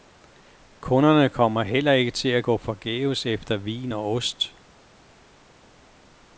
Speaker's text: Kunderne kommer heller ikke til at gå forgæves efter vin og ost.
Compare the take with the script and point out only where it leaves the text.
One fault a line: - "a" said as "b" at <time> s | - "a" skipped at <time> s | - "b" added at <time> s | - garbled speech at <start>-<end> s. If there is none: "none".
none